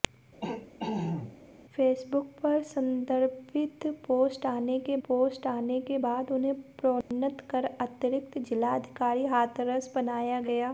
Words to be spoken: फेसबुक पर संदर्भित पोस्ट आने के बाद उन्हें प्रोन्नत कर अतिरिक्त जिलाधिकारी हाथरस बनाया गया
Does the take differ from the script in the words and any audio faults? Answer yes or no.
yes